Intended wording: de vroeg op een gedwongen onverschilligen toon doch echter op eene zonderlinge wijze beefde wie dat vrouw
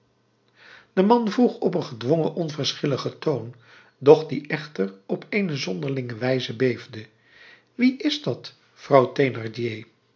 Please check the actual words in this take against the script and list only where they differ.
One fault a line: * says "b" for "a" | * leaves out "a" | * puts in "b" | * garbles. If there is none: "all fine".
* puts in "man"
* puts in "die"
* puts in "is"